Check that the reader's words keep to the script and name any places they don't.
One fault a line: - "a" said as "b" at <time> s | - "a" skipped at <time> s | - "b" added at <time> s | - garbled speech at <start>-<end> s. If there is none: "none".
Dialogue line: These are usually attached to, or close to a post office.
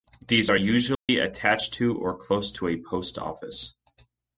none